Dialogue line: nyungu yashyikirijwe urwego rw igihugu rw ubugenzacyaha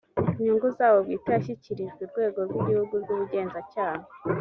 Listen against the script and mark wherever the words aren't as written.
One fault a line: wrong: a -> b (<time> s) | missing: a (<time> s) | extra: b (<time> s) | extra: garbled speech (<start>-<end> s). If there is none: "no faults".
extra: zabo bwite (0.8 s)